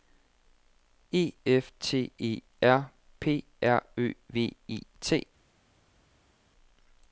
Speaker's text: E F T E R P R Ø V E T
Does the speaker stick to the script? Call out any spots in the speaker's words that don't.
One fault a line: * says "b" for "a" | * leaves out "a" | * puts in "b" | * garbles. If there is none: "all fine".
all fine